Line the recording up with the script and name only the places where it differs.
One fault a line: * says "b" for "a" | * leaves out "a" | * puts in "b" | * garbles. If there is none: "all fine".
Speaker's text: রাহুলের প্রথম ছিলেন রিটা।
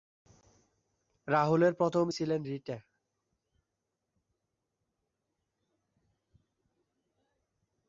all fine